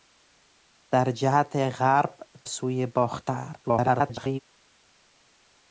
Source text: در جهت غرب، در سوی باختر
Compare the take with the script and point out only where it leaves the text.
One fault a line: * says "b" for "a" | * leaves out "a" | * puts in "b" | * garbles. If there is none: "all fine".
* leaves out "در"
* garbles